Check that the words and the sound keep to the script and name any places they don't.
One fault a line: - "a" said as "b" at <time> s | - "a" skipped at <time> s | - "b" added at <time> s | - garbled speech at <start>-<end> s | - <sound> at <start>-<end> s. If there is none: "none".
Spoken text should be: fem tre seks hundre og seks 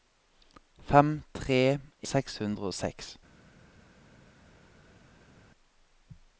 none